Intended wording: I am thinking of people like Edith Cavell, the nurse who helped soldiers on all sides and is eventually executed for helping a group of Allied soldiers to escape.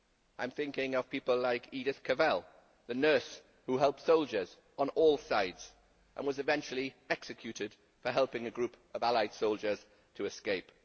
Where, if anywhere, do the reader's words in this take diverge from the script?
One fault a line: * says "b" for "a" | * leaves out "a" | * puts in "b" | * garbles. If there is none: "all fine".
* says "was" for "is"